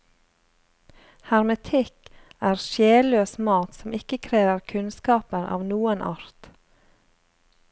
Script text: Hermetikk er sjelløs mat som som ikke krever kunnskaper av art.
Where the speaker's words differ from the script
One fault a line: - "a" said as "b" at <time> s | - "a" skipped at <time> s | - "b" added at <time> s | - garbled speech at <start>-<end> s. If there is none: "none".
- "som" skipped at 3.9 s
- "noen" added at 5.7 s